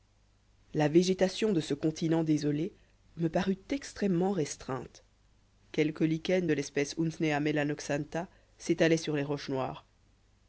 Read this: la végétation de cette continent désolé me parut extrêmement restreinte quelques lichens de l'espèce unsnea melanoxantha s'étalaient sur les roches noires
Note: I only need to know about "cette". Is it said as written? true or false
false